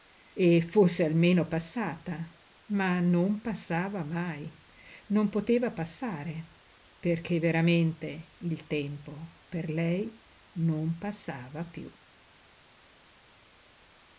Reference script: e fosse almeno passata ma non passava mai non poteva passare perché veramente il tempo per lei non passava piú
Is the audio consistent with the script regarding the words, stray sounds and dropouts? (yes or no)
yes